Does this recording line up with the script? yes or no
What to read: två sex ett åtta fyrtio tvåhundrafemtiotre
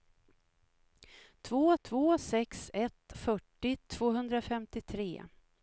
no